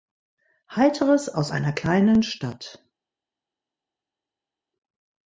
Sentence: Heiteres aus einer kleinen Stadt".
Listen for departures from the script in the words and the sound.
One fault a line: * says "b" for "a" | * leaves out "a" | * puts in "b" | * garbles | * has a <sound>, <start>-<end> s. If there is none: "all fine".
all fine